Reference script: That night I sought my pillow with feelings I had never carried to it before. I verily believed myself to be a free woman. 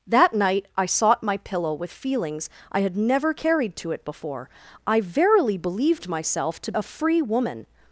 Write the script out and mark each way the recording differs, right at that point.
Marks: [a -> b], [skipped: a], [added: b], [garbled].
That night I sought my pillow with feelings I had never carried to it before. I verily believed myself to [skipped: be] a free woman.